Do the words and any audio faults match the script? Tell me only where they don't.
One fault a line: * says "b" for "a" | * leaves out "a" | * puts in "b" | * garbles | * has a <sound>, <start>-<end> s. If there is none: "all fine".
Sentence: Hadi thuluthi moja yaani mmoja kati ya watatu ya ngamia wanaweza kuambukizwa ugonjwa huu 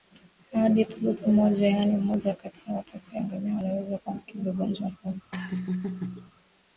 * has a laugh, 5.3-6.3 s